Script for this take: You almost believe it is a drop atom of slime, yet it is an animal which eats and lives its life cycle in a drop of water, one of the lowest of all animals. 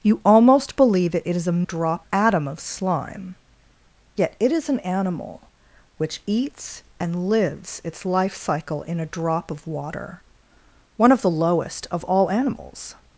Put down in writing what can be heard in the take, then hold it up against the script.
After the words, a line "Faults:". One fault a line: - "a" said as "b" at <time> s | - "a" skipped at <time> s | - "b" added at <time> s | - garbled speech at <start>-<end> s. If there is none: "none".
You almost believe it is a drop atom of slime, yet it is an animal which eats and lives its life cycle in a drop of water, one of the lowest of all animals.
Faults:
none